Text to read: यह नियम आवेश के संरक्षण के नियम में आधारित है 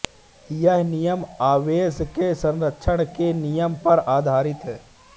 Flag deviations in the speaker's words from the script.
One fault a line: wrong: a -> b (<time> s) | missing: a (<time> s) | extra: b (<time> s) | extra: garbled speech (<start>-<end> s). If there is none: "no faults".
wrong: में -> पर (3.8 s)